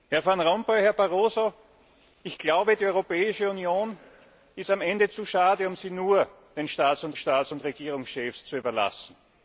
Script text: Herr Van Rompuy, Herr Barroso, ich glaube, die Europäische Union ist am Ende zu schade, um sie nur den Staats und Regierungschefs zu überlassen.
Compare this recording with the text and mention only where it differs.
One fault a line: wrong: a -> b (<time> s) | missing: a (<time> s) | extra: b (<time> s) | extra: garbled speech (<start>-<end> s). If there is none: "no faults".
extra: Staats und (7.1 s)